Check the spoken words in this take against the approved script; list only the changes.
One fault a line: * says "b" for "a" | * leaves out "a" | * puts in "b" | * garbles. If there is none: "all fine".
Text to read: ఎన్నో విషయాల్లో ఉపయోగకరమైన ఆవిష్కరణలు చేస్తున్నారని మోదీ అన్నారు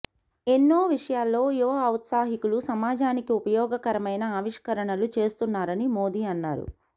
* puts in "యువ ఔత్సాహికులు సమాజానికి"